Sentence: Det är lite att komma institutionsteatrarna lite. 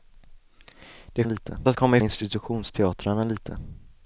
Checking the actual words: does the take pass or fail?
pass